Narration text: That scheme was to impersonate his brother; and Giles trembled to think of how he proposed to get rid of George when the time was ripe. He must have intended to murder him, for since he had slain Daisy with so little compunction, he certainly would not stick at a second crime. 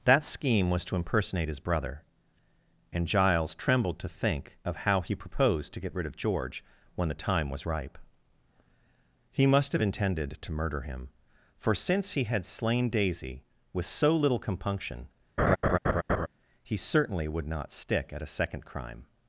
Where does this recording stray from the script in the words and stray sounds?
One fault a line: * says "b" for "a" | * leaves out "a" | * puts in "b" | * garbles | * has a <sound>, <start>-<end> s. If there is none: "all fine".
* has a laugh, 15.4-16.3 s